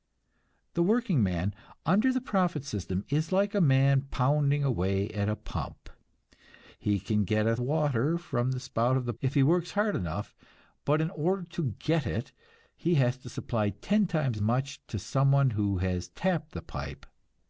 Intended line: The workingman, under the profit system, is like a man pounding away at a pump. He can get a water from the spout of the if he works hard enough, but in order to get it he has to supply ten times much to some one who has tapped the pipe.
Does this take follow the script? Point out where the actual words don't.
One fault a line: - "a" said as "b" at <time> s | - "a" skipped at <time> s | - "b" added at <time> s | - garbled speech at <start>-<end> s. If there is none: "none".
none